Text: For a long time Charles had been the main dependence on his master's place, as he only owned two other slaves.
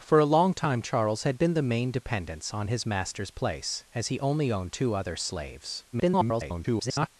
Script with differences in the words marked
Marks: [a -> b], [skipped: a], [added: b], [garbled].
For a long time Charles had been the main dependence on his master's place, as he only owned two other slaves. [garbled]